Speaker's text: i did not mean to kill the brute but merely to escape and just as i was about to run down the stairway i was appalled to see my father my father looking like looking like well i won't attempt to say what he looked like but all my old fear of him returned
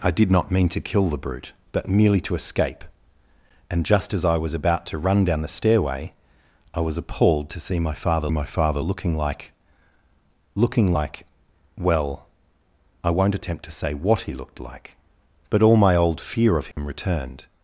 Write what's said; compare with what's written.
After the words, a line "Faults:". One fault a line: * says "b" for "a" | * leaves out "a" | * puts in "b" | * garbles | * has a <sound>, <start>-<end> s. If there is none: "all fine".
i did not mean to kill the brute but merely to escape and just as i was about to run down the stairway i was appalled to see my father my father looking like looking like well i won't attempt to say what he looked like but all my old fear of him returned
Faults:
* has a dropout, 16.7-16.8 s